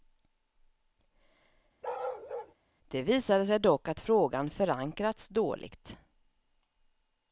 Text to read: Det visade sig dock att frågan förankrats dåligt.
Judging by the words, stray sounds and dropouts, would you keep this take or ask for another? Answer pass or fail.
fail